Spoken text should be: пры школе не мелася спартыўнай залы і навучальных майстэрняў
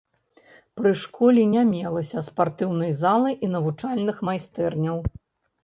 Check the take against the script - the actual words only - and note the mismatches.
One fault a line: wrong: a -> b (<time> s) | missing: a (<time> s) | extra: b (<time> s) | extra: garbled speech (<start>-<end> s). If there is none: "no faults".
no faults